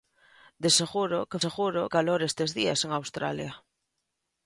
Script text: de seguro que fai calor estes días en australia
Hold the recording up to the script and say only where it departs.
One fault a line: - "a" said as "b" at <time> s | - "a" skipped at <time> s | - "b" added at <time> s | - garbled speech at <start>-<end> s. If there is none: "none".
- "fai" said as "seguro" at 1.4 s